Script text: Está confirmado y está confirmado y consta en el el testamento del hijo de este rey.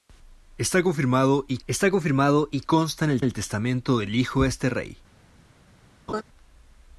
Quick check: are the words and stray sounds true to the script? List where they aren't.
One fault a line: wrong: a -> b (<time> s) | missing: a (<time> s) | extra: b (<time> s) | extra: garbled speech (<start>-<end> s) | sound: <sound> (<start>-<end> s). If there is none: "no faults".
sound: laugh (6.1-6.2 s)